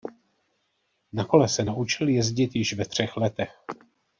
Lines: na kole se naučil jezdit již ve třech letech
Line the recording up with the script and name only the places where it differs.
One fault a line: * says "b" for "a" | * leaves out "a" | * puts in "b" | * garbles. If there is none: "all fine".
all fine